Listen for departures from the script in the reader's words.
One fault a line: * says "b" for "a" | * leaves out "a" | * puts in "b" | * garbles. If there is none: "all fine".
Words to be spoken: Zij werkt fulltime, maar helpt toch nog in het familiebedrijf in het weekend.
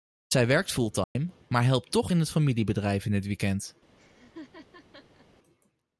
* leaves out "nog"